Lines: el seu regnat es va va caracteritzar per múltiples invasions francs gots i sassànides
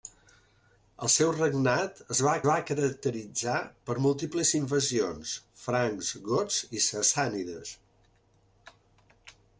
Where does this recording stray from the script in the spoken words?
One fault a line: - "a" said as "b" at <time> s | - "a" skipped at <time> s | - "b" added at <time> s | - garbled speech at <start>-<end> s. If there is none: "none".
none